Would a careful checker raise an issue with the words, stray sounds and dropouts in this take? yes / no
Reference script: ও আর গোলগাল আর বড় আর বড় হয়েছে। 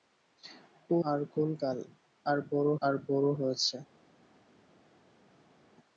no